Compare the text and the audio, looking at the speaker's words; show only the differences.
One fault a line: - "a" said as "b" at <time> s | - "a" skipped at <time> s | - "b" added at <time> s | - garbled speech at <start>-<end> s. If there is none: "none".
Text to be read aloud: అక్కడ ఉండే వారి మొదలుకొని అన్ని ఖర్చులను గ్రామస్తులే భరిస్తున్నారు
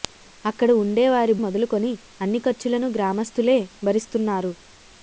none